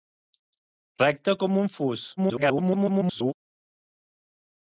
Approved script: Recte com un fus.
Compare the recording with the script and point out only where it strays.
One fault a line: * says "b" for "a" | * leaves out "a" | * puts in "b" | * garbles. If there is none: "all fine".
* garbles